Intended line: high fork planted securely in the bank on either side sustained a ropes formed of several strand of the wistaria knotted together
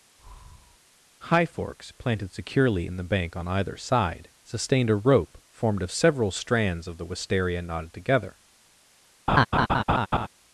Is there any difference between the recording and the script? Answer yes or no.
yes